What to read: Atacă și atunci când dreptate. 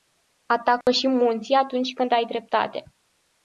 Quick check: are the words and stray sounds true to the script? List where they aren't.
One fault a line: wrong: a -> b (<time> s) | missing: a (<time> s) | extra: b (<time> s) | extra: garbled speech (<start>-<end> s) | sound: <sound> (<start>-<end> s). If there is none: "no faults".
sound: dropout (0.8-0.9 s)
extra: munții (1.1 s)
extra: ai (2.1 s)